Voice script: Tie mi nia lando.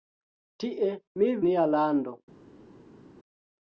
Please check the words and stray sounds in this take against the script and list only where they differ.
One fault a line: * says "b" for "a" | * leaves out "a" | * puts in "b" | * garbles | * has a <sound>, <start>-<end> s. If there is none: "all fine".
all fine